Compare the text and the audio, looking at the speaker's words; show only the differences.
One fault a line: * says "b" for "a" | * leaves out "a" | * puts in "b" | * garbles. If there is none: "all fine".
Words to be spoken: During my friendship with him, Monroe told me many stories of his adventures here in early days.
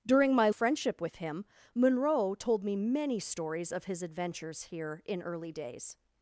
all fine